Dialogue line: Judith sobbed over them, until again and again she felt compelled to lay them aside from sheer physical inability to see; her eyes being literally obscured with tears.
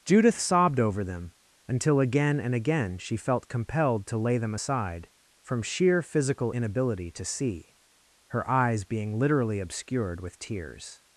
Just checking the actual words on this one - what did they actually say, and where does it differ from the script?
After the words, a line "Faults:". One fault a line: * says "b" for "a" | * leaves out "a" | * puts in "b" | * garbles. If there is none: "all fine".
Judith sobbed over them, until again and again she felt compelled to lay them aside from sheer physical inability to see; her eyes being literally obscured with tears.
Faults:
all fine